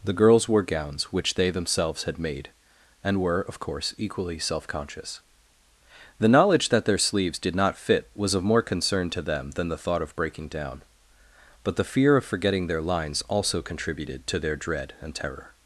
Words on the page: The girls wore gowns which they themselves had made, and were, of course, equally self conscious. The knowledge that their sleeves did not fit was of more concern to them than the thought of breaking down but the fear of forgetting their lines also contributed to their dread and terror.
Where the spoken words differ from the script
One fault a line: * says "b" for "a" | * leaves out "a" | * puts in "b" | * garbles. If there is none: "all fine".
all fine